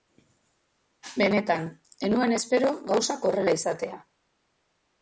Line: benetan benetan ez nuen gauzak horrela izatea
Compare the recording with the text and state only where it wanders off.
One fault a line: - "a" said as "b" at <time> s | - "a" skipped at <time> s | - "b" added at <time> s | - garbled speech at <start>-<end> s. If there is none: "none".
- "benetan" skipped at 1.7 s
- "espero" added at 2.4 s